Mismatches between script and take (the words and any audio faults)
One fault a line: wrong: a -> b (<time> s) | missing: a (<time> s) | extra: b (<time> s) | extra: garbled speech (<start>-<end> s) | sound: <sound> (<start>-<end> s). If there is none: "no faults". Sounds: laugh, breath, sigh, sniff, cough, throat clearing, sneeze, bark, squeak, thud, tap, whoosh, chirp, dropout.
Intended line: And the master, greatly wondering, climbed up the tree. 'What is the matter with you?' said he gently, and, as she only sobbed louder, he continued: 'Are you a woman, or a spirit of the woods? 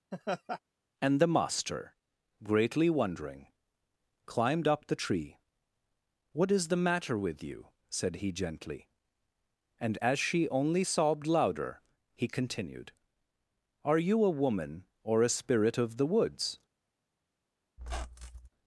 sound: laugh (0.1-0.6 s)
sound: squeak (17.8-18.5 s)